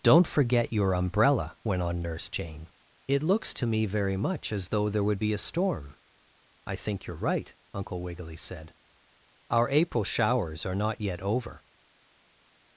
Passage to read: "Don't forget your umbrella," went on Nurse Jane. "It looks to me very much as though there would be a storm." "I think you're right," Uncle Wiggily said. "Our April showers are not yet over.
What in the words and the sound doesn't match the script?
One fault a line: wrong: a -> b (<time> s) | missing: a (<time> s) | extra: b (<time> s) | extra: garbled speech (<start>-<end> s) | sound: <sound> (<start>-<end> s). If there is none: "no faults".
no faults